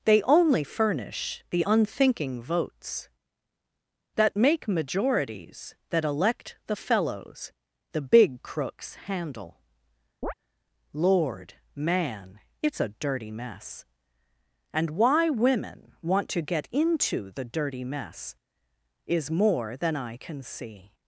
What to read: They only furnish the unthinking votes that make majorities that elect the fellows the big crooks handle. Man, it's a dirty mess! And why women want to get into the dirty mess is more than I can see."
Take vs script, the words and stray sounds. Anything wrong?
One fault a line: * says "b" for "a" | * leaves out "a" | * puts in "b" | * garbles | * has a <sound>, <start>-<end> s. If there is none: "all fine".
* has a chirp, 10.2-10.3 s
* puts in "Lord"